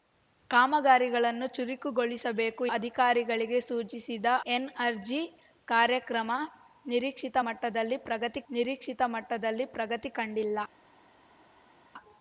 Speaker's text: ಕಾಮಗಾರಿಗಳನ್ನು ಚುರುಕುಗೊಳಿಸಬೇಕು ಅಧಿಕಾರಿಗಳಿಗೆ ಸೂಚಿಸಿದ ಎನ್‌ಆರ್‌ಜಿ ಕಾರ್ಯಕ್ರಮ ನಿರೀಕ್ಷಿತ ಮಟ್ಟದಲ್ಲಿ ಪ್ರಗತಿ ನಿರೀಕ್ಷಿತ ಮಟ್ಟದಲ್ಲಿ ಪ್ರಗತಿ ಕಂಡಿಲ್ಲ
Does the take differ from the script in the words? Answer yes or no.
no